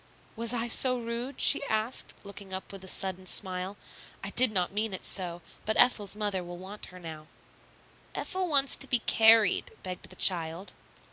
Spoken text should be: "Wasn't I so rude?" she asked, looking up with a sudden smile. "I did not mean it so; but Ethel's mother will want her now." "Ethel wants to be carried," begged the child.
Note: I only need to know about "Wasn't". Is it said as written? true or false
false